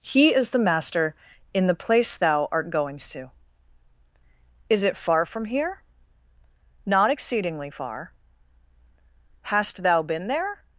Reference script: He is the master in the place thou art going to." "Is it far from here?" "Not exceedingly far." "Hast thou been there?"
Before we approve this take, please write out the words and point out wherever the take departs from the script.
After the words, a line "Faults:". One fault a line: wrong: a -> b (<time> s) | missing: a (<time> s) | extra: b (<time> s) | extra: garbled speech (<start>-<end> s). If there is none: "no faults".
He is the master in the place thou art goings to." "Is it far from here?" "Not exceedingly far." "Hast thou been there?"
Faults:
wrong: going -> goings (2.7 s)